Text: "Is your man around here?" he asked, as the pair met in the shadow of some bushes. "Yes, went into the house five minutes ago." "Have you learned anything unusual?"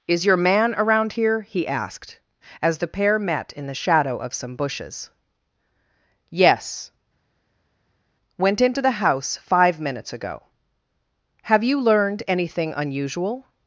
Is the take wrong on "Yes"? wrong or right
right